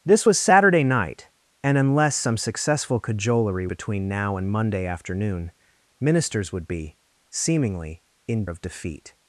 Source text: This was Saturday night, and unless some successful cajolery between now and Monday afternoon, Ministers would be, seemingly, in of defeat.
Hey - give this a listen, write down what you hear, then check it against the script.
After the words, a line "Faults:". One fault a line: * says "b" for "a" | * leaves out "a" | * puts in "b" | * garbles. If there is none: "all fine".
This was Saturday night, and unless some successful cajolery between now and Monday afternoon, Ministers would be, seemingly, in of defeat.
Faults:
all fine